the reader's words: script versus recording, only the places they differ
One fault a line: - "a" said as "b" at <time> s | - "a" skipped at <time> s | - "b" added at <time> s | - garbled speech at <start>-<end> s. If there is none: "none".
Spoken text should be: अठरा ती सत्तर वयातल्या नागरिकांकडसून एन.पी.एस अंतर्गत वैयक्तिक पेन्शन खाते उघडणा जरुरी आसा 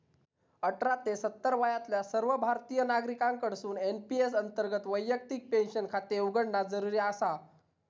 - "ती" said as "ते" at 1.0 s
- "सर्व भारतीय" added at 2.0 s